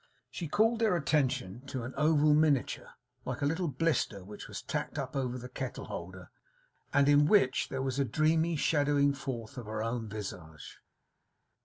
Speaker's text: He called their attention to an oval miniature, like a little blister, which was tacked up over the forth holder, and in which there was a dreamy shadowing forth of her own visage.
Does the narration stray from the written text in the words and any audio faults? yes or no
yes